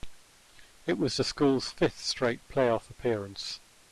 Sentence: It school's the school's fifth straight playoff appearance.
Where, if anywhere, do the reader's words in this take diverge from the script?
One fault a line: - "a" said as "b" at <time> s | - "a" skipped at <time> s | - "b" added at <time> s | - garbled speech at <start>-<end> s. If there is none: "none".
- "school's" said as "was" at 1.0 s